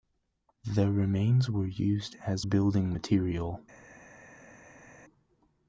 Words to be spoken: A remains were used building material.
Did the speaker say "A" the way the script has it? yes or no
no